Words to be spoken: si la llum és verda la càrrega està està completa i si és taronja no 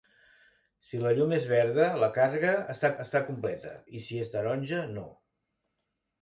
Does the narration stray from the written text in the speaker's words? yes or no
no